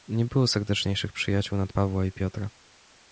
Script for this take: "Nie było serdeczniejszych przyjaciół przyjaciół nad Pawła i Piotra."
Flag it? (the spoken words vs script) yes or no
yes